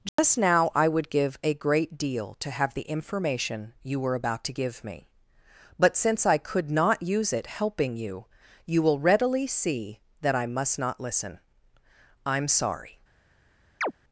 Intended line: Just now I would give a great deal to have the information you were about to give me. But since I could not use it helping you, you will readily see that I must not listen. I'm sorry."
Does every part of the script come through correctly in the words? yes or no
yes